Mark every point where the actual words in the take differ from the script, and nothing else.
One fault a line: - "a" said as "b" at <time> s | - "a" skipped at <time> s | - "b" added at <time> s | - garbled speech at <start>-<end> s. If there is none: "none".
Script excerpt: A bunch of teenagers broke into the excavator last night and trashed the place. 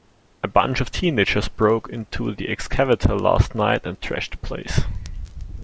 none